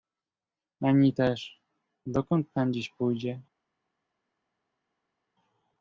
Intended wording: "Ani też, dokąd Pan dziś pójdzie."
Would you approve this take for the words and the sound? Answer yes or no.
yes